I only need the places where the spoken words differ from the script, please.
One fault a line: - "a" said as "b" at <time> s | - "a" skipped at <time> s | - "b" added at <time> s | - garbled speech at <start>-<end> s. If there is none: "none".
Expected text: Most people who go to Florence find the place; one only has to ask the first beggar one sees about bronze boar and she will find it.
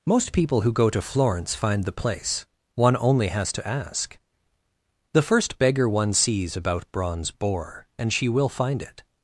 none